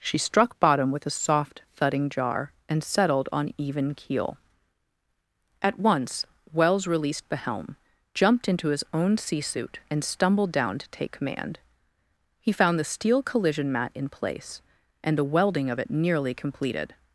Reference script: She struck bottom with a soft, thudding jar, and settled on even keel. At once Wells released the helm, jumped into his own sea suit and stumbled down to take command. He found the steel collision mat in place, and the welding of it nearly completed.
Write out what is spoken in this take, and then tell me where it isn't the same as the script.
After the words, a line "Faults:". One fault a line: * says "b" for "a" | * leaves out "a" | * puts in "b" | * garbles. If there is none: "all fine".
She struck bottom with a soft, thudding jar, and settled on even keel. At once Wells released the helm, jumped into his own sea suit and stumbled down to take command. He found the steel collision mat in place, and the welding of it nearly completed.
Faults:
all fine